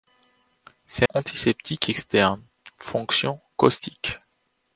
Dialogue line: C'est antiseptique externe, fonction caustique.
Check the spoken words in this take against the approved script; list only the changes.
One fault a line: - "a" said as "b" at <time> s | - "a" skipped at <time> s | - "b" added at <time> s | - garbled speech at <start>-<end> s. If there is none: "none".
none